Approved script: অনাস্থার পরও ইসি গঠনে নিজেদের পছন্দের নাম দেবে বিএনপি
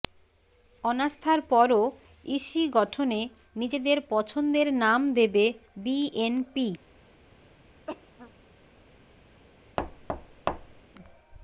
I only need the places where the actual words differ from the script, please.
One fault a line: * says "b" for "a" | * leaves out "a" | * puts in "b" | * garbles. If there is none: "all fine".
all fine